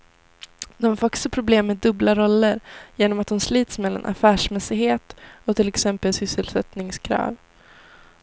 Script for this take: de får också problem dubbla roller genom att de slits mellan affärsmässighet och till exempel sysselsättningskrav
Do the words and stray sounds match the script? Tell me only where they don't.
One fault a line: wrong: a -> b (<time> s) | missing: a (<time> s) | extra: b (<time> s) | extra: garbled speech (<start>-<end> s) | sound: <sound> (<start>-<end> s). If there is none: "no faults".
extra: med (1.7 s)